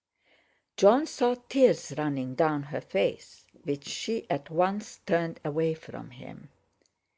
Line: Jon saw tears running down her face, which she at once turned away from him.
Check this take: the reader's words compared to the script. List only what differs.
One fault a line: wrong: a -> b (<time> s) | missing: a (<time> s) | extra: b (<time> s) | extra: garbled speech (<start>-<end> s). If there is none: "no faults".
no faults